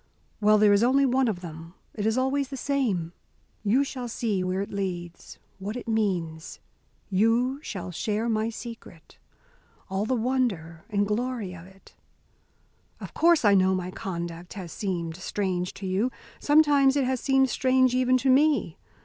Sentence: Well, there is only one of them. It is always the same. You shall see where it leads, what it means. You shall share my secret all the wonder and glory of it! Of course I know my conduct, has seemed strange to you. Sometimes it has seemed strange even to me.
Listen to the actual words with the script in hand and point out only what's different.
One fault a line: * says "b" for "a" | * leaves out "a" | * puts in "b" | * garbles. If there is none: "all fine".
all fine